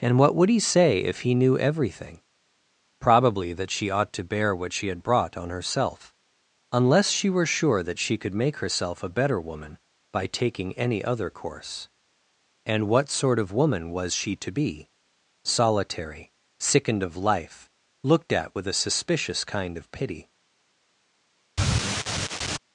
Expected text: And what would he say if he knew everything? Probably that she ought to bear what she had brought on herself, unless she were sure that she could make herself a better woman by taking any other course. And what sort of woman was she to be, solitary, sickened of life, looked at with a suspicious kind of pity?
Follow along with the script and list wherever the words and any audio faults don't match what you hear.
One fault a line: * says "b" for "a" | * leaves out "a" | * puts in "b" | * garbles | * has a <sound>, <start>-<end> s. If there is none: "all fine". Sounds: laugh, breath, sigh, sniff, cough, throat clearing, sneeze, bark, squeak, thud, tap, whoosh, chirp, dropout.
* has a sigh, 21.6-22.6 s